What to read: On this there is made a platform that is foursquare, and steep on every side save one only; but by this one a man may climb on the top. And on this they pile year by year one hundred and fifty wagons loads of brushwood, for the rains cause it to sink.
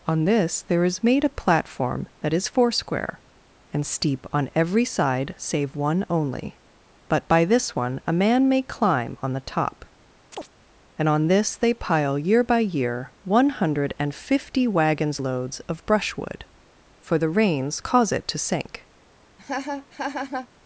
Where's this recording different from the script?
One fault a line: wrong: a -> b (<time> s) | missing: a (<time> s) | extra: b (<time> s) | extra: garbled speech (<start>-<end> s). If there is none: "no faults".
no faults